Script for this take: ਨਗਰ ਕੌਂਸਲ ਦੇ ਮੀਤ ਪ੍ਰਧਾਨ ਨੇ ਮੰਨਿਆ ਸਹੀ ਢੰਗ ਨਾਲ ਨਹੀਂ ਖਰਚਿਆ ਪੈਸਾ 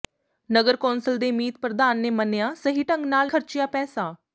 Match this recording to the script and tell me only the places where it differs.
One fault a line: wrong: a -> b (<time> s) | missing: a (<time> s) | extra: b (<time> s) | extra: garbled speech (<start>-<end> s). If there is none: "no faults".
missing: ਨਹੀਂ (3.3 s)